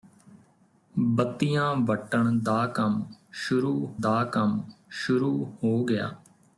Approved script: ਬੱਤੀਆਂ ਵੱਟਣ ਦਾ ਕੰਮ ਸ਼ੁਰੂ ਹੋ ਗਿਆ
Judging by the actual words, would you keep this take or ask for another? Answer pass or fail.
fail